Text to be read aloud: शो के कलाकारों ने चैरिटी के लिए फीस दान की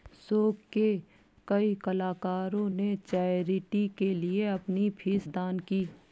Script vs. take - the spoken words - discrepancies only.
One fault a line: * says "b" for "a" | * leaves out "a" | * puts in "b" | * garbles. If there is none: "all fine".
* puts in "कई"
* puts in "अपनी"